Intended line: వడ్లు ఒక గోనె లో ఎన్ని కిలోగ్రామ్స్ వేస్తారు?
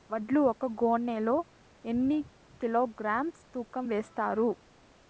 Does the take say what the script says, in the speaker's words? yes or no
no